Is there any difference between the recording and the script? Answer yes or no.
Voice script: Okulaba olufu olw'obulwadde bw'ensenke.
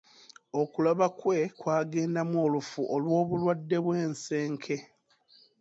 yes